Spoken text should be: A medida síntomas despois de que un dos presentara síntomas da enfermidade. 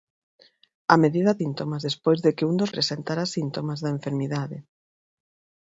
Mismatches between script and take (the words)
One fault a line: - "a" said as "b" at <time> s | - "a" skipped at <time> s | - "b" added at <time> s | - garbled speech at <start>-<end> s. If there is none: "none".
none